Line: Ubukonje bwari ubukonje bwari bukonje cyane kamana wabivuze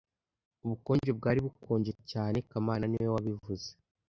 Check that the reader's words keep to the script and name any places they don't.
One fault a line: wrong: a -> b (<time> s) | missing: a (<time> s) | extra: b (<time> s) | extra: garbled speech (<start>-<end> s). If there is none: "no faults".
missing: ubukonje bwari (1.4 s)
extra: niwe (2.9 s)